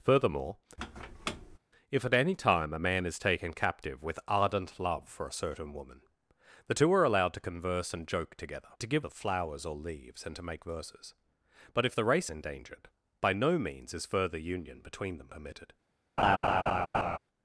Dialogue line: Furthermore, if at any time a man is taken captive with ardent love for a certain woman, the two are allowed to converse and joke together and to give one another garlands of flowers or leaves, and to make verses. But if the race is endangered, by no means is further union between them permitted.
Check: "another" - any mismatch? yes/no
yes